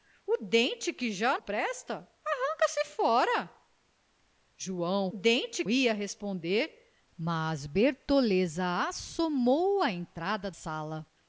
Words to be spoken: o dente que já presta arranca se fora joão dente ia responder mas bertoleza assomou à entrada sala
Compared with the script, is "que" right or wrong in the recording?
right